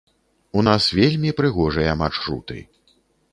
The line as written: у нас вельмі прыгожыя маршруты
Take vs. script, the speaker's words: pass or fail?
pass